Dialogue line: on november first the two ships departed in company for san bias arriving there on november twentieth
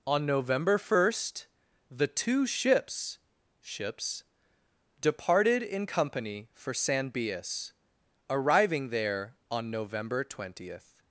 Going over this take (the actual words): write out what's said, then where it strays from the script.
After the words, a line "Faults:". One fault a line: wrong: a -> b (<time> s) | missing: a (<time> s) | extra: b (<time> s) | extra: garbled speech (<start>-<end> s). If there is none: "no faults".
on november first the two ships ships departed in company for san bias arriving there on november twentieth
Faults:
extra: ships (3.6 s)